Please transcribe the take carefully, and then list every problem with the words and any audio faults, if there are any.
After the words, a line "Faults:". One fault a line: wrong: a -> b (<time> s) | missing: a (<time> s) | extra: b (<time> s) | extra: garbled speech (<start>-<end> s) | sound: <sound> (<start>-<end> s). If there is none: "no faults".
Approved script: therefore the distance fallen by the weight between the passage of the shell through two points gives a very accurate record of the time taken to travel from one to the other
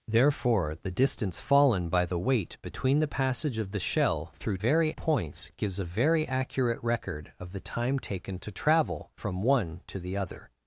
therefore the distance fallen by the weight between the passage of the shell through very points gives a very accurate record of the time taken to travel from one to the other
Faults:
wrong: two -> very (4.6 s)